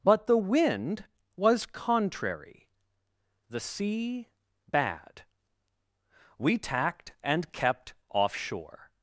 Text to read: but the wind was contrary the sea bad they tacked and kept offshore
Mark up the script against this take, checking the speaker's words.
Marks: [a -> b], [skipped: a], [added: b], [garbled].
but the wind was contrary the sea bad [they -> we] tacked and kept offshore